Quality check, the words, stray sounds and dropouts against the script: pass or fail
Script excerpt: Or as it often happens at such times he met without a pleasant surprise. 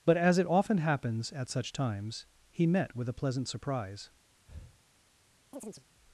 fail